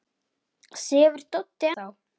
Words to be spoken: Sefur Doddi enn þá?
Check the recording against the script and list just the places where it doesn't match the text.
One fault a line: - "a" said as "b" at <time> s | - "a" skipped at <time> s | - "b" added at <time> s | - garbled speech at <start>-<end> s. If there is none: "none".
- "enn" skipped at 1.7 s